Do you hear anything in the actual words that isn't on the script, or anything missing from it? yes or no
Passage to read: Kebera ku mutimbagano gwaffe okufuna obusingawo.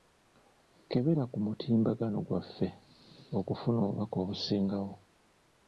yes